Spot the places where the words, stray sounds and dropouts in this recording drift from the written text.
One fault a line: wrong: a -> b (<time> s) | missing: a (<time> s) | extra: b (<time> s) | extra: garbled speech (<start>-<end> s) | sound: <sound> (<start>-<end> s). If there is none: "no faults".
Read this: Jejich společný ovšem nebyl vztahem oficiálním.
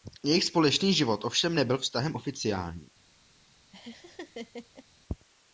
extra: život (0.9 s)
sound: laugh (3.7-4.9 s)